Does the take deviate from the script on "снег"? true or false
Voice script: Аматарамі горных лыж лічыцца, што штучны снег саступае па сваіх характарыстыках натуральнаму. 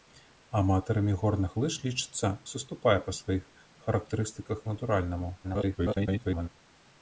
true